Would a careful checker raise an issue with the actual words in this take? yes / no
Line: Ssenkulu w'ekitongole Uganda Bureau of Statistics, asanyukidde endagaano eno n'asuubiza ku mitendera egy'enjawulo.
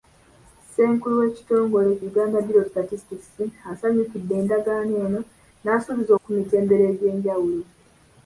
no